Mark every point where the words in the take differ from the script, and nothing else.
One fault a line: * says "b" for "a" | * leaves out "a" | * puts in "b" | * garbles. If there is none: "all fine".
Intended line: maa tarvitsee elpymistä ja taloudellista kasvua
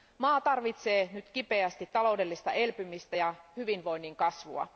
* puts in "nyt kipeästi taloudellista"
* says "hyvinvoinnin" for "taloudellista"